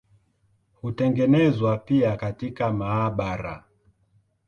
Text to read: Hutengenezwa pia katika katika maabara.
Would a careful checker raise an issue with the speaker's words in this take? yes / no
yes